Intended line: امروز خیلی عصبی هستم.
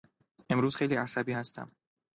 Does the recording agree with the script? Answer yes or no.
yes